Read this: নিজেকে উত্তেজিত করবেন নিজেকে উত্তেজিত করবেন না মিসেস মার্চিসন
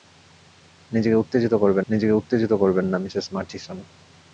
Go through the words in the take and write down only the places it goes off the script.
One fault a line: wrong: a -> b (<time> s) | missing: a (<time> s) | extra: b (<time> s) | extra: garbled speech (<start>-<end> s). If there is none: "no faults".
no faults